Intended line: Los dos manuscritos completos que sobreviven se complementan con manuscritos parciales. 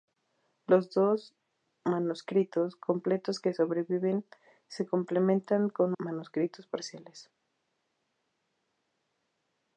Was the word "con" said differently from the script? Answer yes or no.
no